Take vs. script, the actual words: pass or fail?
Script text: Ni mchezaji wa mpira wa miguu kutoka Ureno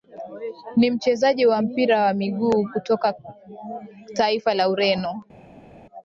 fail